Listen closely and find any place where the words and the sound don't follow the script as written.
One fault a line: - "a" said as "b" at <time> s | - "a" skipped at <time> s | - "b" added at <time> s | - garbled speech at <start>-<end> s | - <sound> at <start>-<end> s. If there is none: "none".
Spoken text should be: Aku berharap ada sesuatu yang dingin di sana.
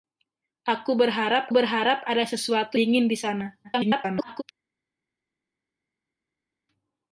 - "berharap" added at 1.5 s
- "yang" skipped at 2.8 s
- garbled speech at 3.6-4.4 s